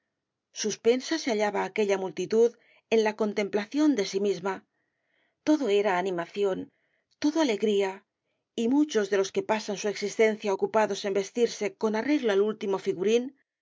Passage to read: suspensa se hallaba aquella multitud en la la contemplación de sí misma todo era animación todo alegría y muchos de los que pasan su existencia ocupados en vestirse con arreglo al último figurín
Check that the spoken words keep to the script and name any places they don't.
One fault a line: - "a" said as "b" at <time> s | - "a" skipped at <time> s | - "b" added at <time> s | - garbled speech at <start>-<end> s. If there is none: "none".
- "la" skipped at 3.2 s